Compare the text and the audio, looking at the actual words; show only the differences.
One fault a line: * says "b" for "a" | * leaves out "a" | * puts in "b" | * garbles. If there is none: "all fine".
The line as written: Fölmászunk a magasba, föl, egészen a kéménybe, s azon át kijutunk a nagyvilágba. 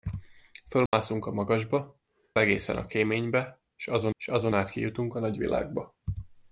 * leaves out "föl"
* puts in "s azon"